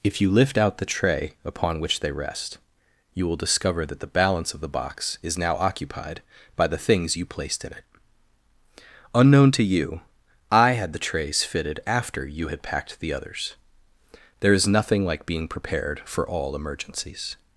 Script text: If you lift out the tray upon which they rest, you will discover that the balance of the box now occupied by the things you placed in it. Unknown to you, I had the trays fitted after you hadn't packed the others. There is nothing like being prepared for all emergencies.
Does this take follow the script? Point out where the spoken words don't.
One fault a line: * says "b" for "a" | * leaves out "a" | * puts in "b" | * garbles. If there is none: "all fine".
* puts in "is"
* says "had" for "hadn't"